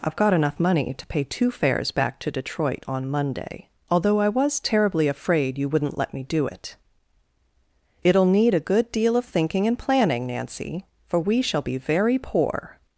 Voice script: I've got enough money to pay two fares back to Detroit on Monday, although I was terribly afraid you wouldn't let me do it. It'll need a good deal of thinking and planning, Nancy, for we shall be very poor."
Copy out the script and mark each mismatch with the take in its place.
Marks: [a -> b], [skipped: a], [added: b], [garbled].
I've got enough money to pay two fares back to Detroit on Monday, although I was terribly afraid you wouldn't let me do it. It'll need a good deal of thinking and planning, Nancy, for we shall be very poor."